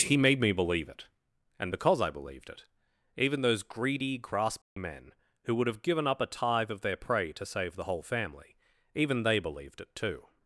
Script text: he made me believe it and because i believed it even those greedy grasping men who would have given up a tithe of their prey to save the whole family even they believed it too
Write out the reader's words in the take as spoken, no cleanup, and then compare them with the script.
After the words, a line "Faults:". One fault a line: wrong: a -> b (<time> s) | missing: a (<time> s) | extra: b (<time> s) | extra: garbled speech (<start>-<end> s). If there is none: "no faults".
he made me believe it and because i believed it even those greedy grasping men who would have given up a tithe of their prey to save the whole family even they believed it too
Faults:
no faults